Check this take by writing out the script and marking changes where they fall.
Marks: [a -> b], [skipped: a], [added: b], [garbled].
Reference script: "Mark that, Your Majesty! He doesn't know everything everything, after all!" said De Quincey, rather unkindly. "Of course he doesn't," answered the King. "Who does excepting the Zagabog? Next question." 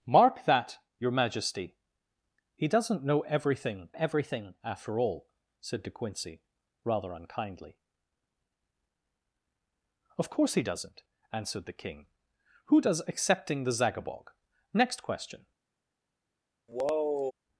"Mark that, Your Majesty! He doesn't know everything everything, after all!" said De Quincey, rather unkindly. "Of course he doesn't," answered the King. "Who does excepting the Zagabog? Next question."